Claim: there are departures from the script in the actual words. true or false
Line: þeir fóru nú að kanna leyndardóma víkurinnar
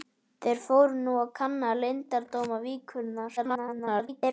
true